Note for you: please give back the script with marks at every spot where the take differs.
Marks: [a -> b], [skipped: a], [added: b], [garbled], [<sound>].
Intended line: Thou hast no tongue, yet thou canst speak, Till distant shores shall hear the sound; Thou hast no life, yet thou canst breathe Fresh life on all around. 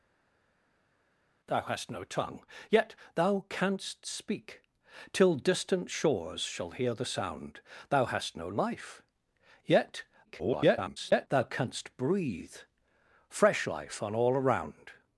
Thou hast no tongue, yet thou canst speak, Till distant shores shall hear the sound; Thou hast no life, yet [garbled] thou canst breathe Fresh life on all around.